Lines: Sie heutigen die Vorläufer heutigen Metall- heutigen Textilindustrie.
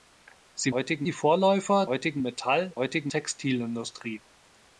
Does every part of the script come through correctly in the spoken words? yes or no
yes